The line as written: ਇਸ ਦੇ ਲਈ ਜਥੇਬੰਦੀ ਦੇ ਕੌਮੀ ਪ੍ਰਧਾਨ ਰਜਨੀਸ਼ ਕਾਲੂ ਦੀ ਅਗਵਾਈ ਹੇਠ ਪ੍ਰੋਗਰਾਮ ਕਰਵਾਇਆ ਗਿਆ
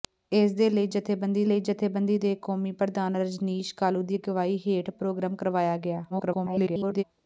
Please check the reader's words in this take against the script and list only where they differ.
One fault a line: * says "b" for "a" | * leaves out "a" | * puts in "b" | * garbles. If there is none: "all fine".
* puts in "ਲਈ ਜਥੇਬੰਦੀ"
* garbles